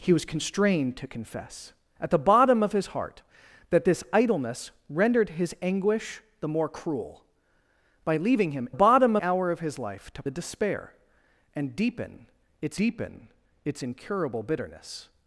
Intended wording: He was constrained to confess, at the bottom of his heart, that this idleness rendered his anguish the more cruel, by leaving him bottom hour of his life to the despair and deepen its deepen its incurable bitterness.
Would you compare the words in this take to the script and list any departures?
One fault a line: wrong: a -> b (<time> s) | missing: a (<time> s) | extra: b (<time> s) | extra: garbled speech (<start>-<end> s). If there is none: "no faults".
no faults